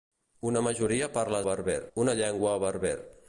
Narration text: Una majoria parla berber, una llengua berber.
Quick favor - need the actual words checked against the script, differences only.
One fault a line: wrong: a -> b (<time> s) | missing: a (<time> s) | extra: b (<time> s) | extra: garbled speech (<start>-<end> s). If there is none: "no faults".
no faults